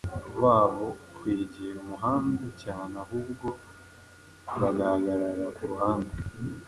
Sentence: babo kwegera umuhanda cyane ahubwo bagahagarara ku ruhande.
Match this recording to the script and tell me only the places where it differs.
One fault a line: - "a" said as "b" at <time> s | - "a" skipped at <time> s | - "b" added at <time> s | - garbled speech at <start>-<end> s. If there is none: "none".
none